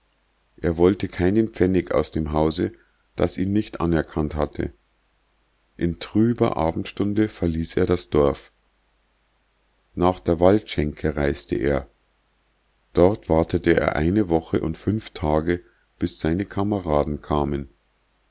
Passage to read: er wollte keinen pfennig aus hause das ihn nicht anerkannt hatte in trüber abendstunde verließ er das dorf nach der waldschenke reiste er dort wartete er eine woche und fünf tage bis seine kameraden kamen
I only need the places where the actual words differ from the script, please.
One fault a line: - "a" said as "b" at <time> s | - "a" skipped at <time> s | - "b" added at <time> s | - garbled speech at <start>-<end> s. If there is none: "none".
- "dem" added at 2.1 s